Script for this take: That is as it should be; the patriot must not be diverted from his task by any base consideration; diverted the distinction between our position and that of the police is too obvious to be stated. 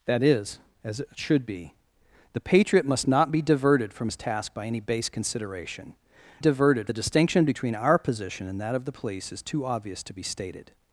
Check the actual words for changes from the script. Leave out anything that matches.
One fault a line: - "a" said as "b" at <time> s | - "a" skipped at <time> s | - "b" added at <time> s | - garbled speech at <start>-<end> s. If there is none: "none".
none